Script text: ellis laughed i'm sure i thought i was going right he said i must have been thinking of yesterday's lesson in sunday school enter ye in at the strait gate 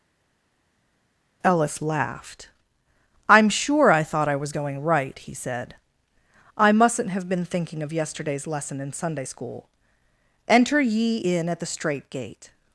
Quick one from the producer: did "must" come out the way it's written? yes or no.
no